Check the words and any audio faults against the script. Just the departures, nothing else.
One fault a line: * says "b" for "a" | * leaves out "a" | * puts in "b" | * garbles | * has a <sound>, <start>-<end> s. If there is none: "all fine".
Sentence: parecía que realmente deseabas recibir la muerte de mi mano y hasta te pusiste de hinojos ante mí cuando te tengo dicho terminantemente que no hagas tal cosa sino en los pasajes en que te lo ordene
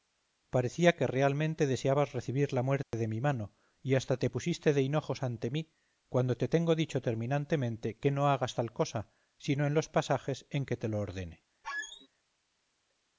* has a dropout, 2.8-2.9 s
* has a squeak, 11.6-12.1 s